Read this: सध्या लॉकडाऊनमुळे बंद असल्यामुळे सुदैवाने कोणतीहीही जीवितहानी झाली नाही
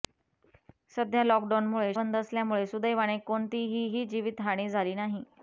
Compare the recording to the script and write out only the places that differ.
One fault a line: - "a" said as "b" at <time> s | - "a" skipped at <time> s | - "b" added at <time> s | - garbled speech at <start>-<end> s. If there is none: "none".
none